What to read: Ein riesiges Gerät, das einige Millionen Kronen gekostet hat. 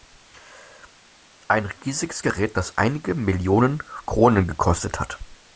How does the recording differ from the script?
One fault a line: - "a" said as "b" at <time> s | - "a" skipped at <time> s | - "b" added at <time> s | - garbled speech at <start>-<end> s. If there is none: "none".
none